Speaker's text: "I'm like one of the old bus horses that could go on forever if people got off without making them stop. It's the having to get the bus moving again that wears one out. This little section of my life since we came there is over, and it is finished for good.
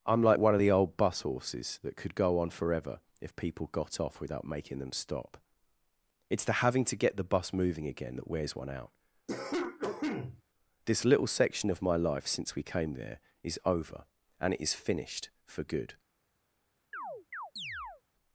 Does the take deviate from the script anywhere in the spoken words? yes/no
no